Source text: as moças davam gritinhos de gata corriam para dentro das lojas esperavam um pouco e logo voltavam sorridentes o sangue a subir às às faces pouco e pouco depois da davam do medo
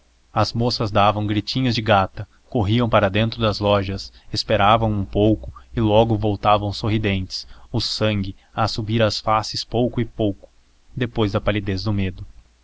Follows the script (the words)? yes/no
no